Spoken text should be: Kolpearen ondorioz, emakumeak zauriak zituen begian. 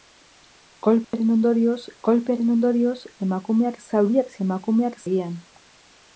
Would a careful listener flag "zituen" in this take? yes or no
yes